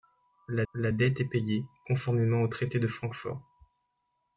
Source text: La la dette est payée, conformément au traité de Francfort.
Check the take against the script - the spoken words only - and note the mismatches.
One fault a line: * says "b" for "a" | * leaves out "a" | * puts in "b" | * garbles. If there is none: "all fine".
all fine